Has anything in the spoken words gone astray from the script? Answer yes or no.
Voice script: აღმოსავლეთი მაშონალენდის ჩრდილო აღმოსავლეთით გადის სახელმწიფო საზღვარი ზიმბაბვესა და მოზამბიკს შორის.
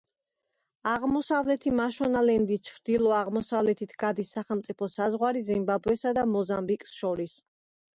no